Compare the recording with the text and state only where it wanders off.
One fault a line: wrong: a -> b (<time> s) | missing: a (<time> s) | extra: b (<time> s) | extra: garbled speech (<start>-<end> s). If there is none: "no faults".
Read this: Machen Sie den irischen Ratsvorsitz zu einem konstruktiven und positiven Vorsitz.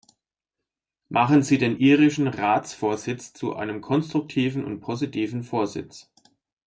no faults